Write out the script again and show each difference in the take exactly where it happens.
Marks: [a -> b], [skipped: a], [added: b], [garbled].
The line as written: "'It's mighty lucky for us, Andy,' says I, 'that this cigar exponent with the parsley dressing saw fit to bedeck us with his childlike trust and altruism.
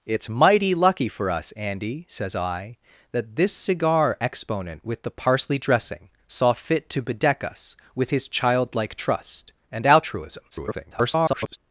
"'It's mighty lucky for us, Andy,' says I, 'that this cigar exponent with the parsley dressing saw fit to bedeck us with his childlike trust and altruism. [garbled]